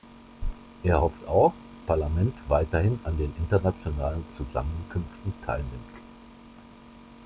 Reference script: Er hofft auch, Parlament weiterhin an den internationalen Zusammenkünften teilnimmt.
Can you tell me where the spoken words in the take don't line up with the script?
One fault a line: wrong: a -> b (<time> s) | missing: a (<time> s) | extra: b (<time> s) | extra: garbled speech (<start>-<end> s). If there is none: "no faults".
no faults